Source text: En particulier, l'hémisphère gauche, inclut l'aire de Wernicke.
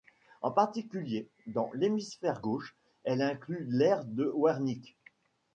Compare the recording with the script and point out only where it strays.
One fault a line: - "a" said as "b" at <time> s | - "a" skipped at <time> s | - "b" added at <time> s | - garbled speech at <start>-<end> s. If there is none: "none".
- "dans" added at 1.4 s
- "elle" added at 3.0 s